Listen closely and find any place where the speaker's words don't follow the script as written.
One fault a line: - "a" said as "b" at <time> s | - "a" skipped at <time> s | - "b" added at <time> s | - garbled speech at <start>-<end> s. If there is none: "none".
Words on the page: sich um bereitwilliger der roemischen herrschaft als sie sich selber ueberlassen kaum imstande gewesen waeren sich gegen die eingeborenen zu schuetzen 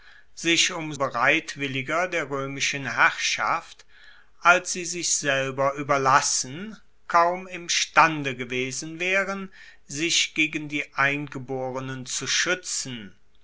none